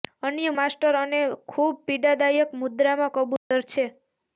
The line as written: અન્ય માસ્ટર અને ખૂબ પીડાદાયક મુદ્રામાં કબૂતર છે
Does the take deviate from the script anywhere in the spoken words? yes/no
no